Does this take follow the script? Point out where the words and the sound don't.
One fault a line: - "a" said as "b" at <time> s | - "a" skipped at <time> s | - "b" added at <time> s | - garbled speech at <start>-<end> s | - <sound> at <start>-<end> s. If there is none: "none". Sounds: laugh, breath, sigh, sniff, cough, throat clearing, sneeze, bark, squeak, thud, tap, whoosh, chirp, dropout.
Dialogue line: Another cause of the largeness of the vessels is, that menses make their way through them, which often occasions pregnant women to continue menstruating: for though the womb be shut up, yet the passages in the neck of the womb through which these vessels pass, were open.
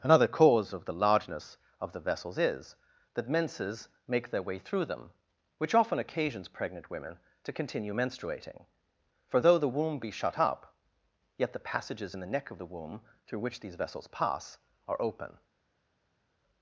- "were" said as "are" at 14.9 s